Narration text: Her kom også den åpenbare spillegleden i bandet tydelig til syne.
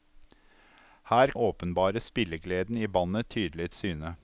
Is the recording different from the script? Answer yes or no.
yes